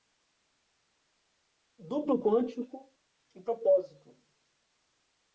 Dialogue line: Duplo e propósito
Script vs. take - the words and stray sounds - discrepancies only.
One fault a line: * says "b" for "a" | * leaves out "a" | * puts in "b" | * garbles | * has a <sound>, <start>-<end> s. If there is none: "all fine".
* puts in "quântico"